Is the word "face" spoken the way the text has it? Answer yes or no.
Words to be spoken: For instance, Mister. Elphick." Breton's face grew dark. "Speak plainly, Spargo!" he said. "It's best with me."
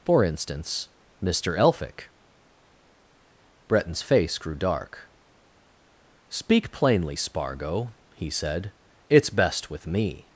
yes